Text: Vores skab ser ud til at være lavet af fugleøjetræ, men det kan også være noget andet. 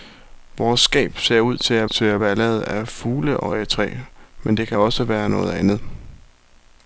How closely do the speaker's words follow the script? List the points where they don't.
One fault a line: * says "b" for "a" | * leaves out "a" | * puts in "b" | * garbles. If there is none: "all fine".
* puts in "til at"